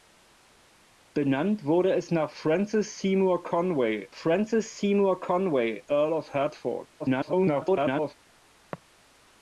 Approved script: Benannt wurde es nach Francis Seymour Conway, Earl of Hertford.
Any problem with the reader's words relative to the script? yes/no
yes